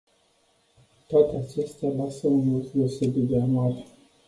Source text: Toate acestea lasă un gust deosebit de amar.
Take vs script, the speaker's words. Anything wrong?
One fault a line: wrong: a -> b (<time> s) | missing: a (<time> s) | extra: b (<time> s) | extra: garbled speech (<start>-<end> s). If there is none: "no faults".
no faults